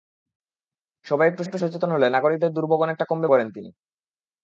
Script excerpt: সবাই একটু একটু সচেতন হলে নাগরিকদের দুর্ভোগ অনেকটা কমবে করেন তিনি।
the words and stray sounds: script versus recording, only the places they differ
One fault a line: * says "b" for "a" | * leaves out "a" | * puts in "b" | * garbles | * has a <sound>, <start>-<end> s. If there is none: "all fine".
all fine